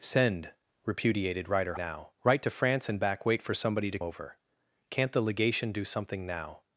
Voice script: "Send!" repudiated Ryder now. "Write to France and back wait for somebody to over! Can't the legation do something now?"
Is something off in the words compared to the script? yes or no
no